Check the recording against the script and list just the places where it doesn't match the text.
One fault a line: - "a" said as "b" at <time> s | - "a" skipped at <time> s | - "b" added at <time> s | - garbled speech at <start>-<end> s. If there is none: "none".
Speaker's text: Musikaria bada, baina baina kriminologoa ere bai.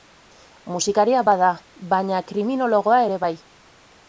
- "baina" skipped at 2.2 s